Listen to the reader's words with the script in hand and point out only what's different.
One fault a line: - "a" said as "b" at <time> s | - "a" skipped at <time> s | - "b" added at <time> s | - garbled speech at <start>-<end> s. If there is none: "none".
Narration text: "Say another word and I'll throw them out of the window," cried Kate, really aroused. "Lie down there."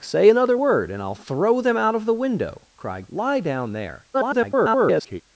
- "Kate really aroused" skipped at 3.1 s
- garbled speech at 4.1-5.2 s